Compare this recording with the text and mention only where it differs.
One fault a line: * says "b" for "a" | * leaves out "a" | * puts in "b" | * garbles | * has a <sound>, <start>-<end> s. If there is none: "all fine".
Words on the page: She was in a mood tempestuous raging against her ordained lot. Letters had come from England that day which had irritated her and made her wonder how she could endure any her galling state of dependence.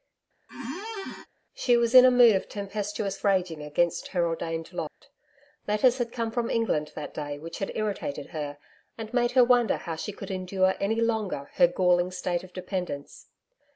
* has a squeak, 0.5-1.3 s
* puts in "of"
* has a dropout, 4.9-5.0 s
* puts in "longer"